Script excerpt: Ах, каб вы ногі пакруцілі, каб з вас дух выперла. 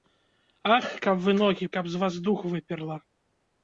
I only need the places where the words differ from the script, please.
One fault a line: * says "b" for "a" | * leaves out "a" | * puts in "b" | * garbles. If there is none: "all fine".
* leaves out "пакруцілі"